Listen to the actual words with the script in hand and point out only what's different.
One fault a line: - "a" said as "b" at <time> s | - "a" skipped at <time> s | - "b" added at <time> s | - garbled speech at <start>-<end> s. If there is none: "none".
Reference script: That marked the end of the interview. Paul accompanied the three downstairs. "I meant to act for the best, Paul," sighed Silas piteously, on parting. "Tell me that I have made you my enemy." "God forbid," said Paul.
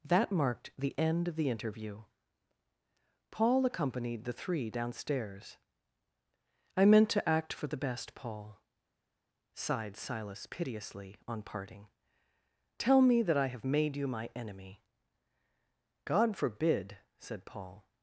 none